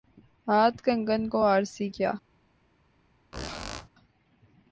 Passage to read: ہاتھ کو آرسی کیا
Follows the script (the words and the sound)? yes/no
no